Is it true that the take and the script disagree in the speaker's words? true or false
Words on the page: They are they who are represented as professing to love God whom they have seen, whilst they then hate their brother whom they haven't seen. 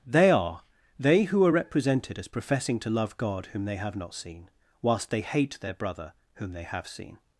true